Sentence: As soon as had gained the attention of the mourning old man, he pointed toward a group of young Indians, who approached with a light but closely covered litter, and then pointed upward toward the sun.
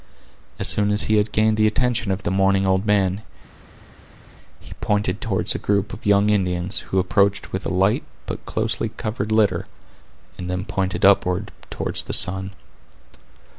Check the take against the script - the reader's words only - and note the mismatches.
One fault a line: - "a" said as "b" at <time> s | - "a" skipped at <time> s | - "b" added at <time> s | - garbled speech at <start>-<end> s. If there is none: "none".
- "he" added at 1.0 s